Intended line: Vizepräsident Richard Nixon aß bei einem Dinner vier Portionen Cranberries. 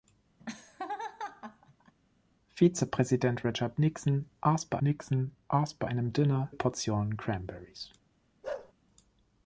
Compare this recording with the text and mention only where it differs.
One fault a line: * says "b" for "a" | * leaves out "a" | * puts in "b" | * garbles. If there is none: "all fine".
* puts in "Nixon aß bei"
* leaves out "vier"